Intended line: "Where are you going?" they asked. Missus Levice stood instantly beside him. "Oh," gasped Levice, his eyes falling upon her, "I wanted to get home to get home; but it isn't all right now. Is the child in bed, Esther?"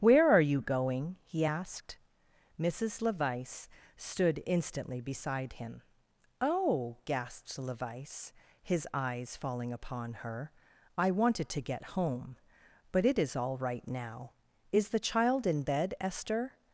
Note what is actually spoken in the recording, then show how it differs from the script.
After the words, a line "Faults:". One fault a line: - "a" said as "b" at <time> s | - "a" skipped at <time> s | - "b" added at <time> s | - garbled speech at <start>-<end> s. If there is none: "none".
"Where are you going?" he asked. Missus Levice stood instantly beside him. "Oh," gasped Levice, his eyes falling upon her, "I wanted to get home; but it is all right now. Is the child in bed, Esther?"
Faults:
- "they" said as "he" at 1.2 s
- "to get home" skipped at 12.4 s
- "isn't" said as "is" at 13.2 s